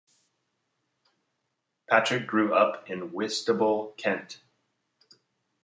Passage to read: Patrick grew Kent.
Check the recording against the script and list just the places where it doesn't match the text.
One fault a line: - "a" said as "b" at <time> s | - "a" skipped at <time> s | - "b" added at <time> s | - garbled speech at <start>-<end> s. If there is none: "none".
- "up in Whitstable" added at 2.5 s